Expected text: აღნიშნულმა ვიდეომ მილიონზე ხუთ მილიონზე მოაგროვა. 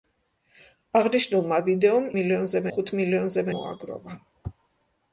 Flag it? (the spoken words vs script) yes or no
no